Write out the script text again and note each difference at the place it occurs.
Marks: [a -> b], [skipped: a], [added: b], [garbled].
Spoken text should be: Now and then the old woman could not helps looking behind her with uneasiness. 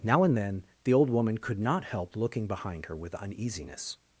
Now and then the old woman could not [helps -> help] looking behind her with uneasiness.